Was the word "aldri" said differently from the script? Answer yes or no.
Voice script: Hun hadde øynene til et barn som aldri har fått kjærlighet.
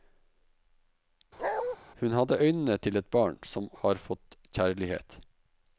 yes